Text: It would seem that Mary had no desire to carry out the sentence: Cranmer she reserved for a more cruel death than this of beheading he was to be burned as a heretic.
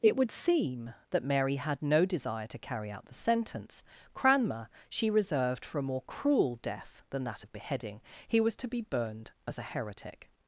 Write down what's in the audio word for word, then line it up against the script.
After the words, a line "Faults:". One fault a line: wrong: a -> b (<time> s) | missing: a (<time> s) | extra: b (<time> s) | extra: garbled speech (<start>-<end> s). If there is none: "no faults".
It would seem that Mary had no desire to carry out the sentence: Cranmer she reserved for a more cruel death than that of beheading he was to be burned as a heretic.
Faults:
wrong: this -> that (7.2 s)